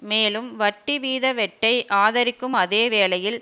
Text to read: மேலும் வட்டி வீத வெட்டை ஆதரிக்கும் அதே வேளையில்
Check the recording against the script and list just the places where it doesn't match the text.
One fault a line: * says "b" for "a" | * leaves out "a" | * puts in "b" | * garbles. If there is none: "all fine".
all fine